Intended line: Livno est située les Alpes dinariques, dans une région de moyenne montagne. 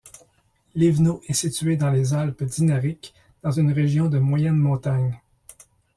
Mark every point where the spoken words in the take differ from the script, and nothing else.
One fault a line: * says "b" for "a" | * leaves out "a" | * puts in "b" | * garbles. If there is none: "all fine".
* puts in "dans"